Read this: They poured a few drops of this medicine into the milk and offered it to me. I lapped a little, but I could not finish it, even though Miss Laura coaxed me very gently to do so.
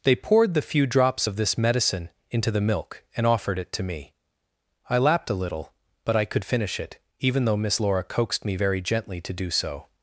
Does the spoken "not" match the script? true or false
false